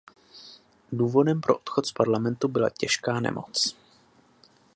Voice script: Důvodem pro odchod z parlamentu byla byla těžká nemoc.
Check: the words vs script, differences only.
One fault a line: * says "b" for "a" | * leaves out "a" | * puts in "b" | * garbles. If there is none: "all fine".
* leaves out "byla"